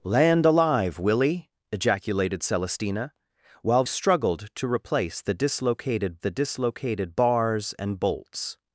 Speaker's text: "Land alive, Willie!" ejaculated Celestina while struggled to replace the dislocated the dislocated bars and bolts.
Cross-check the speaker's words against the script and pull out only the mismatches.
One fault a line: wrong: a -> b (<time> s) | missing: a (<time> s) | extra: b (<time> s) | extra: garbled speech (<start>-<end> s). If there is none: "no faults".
no faults